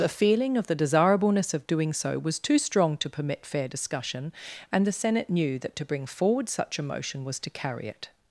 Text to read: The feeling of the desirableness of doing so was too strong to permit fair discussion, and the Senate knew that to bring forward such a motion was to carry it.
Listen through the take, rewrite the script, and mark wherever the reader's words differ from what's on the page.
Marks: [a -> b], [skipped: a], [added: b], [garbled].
The feeling of the desirableness of doing so was too strong to permit fair discussion, and the Senate knew that to bring forward such a motion was to carry it.